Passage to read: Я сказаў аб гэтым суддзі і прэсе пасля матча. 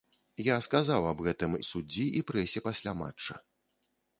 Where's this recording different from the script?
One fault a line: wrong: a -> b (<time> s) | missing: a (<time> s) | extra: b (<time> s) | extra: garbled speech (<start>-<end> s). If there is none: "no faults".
no faults